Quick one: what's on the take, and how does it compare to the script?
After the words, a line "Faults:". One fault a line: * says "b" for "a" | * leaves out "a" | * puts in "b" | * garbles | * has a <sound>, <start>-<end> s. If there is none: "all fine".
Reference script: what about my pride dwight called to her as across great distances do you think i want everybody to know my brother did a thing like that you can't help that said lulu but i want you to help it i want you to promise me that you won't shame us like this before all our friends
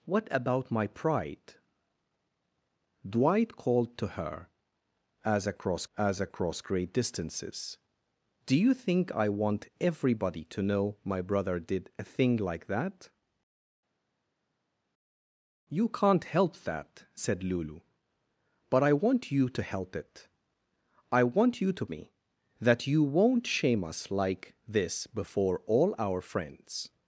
what about my pride dwight called to her as across as across great distances do you think i want everybody to know my brother did a thing like that you can't help that said lulu but i want you to help it i want you to me that you won't shame us like this before all our friends
Faults:
* puts in "as across"
* leaves out "promise"